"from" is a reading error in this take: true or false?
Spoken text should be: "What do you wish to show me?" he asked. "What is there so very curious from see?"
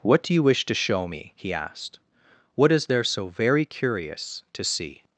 true